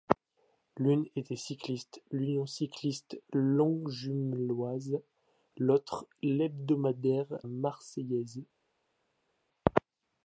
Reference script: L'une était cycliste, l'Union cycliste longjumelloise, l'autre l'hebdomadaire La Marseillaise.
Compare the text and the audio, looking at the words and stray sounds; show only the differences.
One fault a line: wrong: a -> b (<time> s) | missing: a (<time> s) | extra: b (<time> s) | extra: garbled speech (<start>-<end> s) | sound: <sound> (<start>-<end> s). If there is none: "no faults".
missing: La (7.4 s)